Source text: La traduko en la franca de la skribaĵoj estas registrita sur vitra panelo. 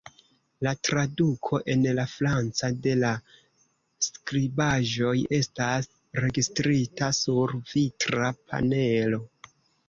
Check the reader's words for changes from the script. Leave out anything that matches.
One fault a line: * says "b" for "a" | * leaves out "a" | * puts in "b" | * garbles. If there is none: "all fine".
all fine